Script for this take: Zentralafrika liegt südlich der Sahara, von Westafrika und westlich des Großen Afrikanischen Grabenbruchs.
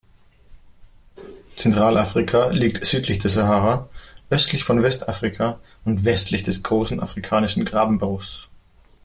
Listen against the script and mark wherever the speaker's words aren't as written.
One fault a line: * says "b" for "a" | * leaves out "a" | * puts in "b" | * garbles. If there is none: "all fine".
* puts in "östlich"